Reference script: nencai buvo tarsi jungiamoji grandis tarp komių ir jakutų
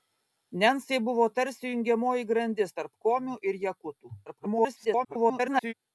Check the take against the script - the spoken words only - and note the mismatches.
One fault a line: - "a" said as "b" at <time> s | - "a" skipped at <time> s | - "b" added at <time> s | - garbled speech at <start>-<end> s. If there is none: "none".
- garbled speech at 4.3-5.7 s